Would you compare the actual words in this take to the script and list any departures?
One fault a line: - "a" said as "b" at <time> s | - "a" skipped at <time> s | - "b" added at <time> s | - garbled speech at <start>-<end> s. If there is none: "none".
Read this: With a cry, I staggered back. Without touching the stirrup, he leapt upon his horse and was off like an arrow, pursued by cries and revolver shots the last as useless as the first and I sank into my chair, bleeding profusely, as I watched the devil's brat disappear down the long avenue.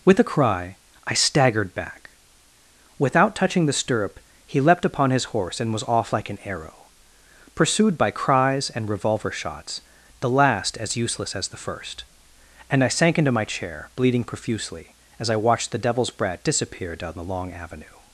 none